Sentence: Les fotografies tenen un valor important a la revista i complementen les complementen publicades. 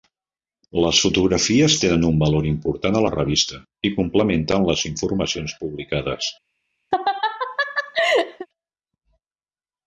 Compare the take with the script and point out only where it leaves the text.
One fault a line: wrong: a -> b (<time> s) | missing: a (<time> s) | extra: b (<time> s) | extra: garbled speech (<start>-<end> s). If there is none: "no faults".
wrong: complementen -> informacions (4.9 s)